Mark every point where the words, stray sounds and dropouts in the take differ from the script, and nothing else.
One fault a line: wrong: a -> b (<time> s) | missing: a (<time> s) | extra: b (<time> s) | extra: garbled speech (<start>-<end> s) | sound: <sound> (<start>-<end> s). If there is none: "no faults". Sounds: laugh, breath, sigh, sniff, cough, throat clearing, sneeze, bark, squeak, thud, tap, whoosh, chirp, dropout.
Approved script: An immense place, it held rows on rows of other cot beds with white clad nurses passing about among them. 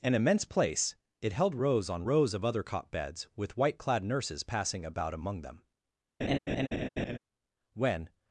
sound: laugh (6.2-7.2 s)
extra: When (7.7 s)